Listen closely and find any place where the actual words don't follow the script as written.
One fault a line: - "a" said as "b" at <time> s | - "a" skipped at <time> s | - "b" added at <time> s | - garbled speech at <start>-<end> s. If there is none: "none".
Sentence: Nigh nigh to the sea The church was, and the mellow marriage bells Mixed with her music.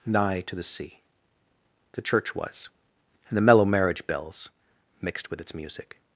- "nigh" skipped at 0.4 s
- "her" said as "its" at 5.4 s